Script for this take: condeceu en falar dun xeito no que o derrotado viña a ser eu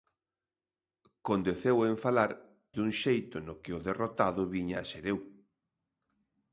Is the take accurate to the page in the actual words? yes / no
yes